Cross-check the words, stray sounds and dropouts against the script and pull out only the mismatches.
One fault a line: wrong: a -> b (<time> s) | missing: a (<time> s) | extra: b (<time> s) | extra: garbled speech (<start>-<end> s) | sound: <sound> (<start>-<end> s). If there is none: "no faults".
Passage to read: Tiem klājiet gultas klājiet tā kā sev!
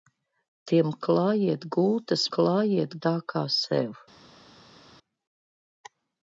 no faults